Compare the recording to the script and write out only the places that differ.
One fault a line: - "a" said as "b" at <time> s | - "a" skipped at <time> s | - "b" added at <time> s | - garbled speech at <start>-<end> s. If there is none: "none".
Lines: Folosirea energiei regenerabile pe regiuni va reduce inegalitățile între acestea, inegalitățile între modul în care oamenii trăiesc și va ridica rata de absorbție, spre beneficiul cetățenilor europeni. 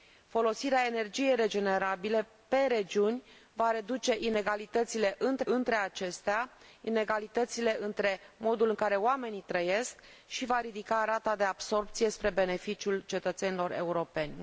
- "între" added at 5.4 s